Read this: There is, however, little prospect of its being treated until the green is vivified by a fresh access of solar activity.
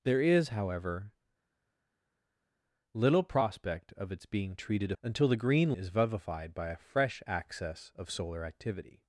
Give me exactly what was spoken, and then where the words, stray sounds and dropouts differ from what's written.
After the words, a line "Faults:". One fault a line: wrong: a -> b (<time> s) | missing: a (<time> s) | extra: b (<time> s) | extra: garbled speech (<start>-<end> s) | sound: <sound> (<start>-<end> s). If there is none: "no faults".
There is, however, little prospect of its being treated until the green is vivified by a fresh access of solar activity.
Faults:
no faults